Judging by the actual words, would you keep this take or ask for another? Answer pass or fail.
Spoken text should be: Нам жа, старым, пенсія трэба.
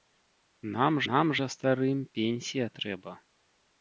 fail